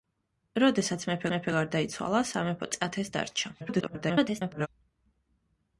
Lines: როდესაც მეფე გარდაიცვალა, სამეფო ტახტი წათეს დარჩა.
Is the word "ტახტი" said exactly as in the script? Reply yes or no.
no